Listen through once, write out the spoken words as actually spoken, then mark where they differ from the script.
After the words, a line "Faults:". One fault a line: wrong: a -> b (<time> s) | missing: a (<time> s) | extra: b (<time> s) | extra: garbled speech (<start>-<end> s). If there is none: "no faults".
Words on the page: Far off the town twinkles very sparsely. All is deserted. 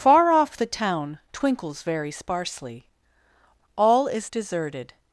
Far off the town twinkles very sparsely. All is deserted.
Faults:
no faults